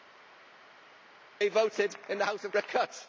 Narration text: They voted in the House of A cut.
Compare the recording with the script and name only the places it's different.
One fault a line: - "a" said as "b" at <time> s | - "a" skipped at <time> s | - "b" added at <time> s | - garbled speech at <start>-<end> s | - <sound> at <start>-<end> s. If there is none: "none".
none